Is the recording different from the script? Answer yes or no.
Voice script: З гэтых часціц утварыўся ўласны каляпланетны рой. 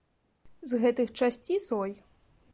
yes